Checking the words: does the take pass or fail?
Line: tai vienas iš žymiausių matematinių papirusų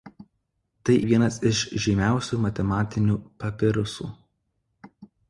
pass